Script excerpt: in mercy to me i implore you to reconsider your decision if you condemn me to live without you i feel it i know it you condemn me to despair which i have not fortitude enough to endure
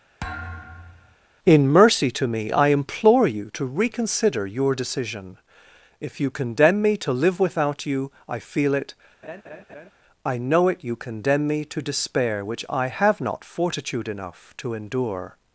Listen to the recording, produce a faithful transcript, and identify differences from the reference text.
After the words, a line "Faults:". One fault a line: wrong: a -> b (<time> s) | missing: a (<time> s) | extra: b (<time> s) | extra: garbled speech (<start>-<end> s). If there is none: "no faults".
in mercy to me i implore you to reconsider your decision if you condemn me to live without you i feel it i know it you condemn me to despair which i have not fortitude enough to endure
Faults:
no faults